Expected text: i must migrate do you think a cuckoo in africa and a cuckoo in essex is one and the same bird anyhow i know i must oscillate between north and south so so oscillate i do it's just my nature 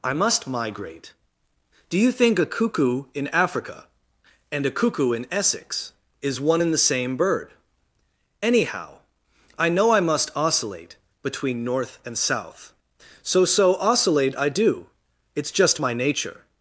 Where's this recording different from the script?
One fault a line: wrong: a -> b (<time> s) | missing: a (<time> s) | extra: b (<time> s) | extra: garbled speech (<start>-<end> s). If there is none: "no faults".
no faults